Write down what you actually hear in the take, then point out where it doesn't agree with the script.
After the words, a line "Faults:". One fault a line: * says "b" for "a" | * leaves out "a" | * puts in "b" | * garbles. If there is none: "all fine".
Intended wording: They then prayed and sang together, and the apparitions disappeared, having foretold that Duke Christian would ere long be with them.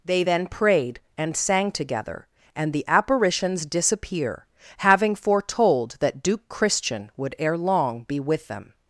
They then prayed and sang together, and the apparitions disappear, having foretold that Duke Christian would ere long be with them.
Faults:
* says "disappear" for "disappeared"